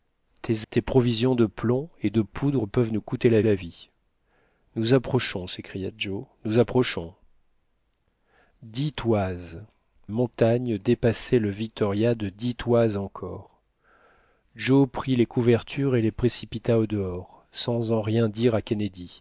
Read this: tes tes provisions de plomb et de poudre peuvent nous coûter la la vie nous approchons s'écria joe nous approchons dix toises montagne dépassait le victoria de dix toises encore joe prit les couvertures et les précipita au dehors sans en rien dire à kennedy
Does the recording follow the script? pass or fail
pass